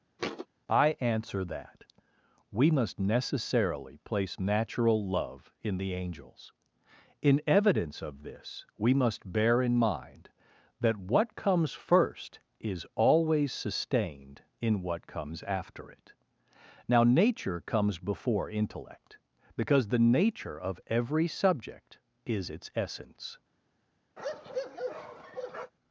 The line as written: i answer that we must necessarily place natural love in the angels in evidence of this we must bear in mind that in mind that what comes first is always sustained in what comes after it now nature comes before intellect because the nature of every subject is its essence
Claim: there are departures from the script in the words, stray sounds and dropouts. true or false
true